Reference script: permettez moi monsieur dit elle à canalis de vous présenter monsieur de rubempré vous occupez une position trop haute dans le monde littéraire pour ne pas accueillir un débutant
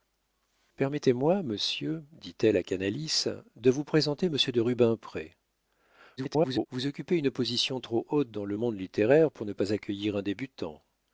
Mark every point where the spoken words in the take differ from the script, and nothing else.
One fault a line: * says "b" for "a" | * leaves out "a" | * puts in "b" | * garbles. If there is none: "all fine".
* garbles